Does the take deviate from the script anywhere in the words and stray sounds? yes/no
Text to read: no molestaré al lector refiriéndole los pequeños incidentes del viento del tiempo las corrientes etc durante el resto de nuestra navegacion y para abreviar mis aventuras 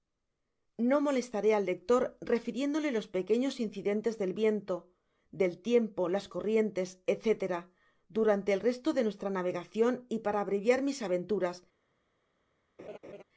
yes